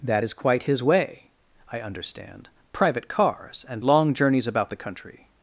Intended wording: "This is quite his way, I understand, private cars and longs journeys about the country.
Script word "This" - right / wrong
wrong